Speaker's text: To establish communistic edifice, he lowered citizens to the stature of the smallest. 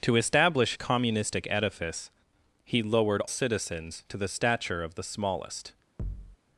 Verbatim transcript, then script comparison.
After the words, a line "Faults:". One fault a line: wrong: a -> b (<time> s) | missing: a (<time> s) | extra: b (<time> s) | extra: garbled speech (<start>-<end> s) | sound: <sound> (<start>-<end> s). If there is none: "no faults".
To establish communistic edifice, he lowered citizens to the stature of the smallest.
Faults:
sound: thud (6.0-6.4 s)